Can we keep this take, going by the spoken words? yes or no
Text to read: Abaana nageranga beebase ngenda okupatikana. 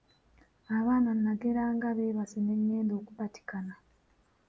no